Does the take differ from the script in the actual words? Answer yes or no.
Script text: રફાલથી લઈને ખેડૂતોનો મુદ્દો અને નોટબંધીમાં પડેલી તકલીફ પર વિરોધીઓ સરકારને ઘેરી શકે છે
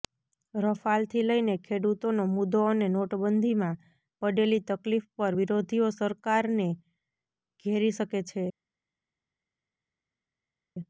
no